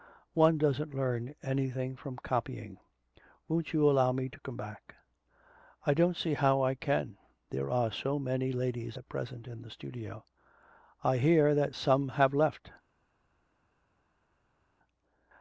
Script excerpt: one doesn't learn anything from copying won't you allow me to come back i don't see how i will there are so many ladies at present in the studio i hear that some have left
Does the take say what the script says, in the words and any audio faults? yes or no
no